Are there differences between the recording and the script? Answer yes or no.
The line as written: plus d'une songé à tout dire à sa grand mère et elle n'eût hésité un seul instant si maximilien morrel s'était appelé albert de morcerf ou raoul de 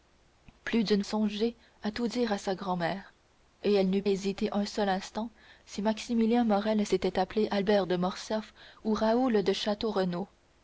no